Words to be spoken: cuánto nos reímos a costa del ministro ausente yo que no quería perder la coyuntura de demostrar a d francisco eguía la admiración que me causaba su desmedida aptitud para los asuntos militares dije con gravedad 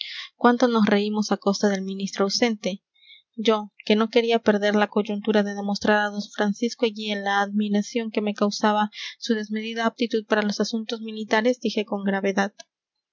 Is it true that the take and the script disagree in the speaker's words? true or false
false